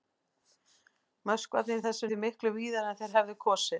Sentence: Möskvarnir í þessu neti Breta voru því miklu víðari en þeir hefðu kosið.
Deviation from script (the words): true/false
true